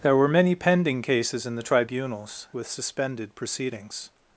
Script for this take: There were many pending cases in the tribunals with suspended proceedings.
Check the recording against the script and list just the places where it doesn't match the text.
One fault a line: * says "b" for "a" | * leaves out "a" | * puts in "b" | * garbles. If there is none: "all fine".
all fine